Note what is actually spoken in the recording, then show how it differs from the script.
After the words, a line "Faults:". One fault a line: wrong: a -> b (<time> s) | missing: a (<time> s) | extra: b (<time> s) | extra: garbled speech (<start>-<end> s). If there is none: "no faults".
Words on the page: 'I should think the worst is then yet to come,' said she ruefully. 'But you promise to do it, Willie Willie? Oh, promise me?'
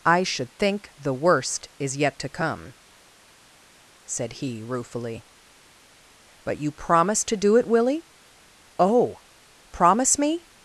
'I should think the worst is yet to come,' said he ruefully. 'But you promise to do it, Willie? Oh, promise me?'
Faults:
missing: then (2.0 s)
wrong: she -> he (4.3 s)
missing: Willie (8.1 s)